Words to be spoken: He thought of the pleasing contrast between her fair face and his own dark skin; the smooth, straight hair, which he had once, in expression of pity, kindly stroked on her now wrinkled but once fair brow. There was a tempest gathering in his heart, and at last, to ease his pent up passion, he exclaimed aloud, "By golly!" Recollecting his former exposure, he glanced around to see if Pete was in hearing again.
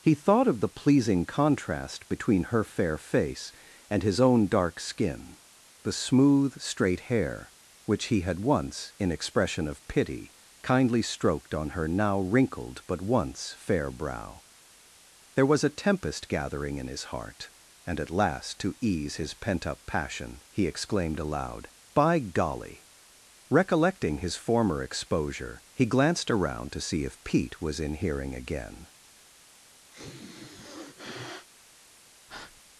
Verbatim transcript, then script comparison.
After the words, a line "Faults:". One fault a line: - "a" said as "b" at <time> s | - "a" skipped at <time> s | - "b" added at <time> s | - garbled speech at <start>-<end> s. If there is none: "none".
He thought of the pleasing contrast between her fair face and his own dark skin; the smooth, straight hair, which he had once, in expression of pity, kindly stroked on her now wrinkled but once fair brow. There was a tempest gathering in his heart, and at last, to ease his pent up passion, he exclaimed aloud, "By golly!" Recollecting his former exposure, he glanced around to see if Pete was in hearing again.
Faults:
none